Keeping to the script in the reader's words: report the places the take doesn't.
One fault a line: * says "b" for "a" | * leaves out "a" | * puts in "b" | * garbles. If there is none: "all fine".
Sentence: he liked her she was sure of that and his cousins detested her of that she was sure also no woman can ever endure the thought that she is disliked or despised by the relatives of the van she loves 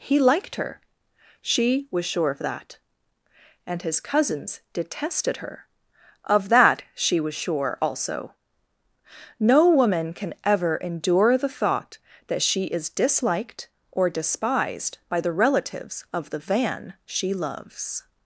all fine